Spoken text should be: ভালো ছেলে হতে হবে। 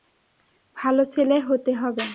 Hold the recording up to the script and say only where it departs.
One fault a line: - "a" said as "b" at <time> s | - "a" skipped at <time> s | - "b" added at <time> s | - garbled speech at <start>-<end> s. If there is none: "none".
none